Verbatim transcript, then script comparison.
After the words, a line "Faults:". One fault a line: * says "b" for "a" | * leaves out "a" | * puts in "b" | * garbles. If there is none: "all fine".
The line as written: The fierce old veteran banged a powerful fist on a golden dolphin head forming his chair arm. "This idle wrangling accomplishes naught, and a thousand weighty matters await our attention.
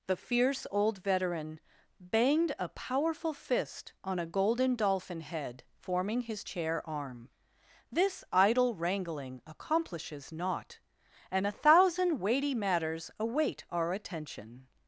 The fierce old veteran banged a powerful fist on a golden dolphin head forming his chair arm. "This idle wrangling accomplishes naught, and a thousand weighty matters await our attention.
Faults:
all fine